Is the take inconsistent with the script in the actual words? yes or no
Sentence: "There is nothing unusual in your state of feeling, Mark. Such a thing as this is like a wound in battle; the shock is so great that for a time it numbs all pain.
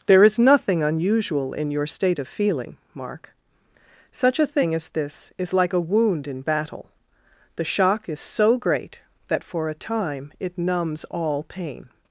no